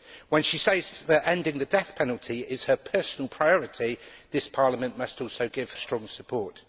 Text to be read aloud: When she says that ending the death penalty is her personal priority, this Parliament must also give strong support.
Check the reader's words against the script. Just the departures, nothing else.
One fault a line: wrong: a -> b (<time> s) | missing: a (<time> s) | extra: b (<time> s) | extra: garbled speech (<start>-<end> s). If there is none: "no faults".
no faults